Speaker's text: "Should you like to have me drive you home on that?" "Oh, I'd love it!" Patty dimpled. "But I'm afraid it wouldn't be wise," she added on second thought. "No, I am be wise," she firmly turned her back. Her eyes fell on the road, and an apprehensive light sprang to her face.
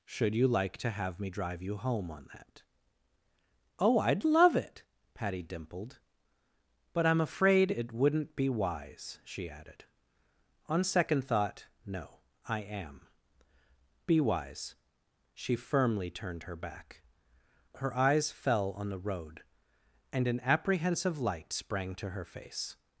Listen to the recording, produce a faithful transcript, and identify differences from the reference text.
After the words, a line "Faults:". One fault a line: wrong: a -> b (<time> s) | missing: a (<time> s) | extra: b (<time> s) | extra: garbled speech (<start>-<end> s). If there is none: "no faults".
"Should you like to have me drive you home on that?" "Oh, I'd love it!" Patty dimpled. "But I'm afraid it wouldn't be wise," she added on second thought. "No, I am be wise," she firmly turned her back. Her eyes fell on the road, and an apprehensive light sprang to her face.
Faults:
no faults